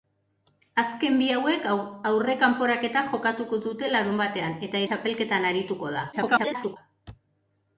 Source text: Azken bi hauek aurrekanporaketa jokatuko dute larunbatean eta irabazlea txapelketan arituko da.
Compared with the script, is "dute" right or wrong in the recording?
right